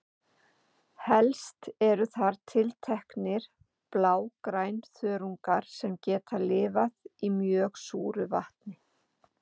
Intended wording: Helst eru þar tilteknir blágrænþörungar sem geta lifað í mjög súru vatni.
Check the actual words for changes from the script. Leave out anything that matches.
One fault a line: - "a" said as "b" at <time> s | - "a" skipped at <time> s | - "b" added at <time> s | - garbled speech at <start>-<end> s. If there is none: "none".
none